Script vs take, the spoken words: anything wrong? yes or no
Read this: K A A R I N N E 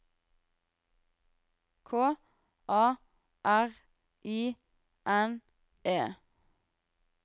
yes